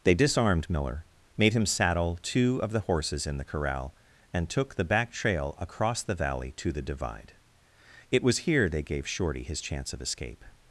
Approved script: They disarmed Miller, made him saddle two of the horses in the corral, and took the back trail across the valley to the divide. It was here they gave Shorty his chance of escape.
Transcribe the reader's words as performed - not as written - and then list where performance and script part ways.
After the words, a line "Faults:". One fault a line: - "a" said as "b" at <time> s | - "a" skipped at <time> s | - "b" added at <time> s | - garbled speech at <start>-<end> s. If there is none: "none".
They disarmed Miller, made him saddle two of the horses in the corral, and took the back trail across the valley to the divide. It was here they gave Shorty his chance of escape.
Faults:
none